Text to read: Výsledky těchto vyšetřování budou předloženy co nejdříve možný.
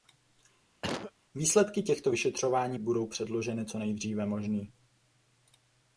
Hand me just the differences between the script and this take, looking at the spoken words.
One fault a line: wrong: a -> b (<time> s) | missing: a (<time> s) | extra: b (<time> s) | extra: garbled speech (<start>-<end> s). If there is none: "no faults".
no faults